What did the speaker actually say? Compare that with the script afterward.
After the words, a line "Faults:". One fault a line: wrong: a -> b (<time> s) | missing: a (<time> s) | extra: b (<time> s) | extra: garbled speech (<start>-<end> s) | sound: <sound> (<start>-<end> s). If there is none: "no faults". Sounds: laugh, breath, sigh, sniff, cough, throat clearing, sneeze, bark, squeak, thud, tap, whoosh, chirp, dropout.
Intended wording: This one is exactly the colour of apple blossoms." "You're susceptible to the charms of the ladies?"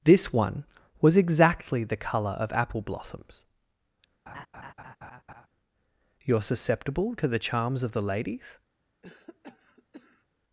This one was exactly the colour of apple blossoms." "You're susceptible to the charms of the ladies?"
Faults:
wrong: is -> was (1.0 s)
sound: laugh (4.3-5.5 s)
sound: cough (9.0-10.3 s)